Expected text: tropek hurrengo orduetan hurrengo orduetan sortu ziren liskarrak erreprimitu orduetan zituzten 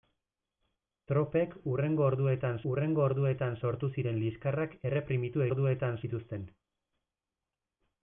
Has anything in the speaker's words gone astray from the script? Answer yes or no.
no